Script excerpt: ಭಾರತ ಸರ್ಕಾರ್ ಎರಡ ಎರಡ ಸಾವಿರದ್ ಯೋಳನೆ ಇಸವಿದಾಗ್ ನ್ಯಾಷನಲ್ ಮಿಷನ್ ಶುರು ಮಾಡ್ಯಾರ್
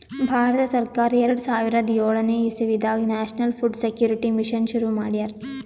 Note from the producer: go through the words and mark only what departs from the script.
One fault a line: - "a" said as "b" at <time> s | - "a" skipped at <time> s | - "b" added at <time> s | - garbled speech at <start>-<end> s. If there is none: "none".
- "ಎರಡ" skipped at 1.4 s
- "ಫುಡ್ ಸೆಕ್ಯೂರಿಟಿ" added at 3.6 s